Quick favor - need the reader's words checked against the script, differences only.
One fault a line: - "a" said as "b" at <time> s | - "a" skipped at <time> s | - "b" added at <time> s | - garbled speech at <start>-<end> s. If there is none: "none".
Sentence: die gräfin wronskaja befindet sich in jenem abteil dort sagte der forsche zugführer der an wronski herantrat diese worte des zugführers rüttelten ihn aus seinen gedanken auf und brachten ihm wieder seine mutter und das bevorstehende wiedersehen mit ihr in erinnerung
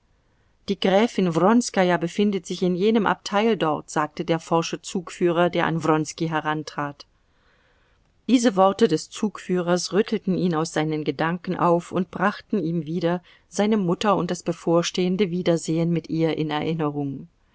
none